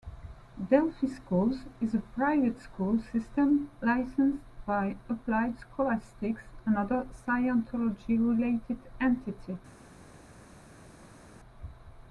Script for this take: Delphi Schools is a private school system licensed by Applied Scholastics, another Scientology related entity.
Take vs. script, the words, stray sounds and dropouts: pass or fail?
pass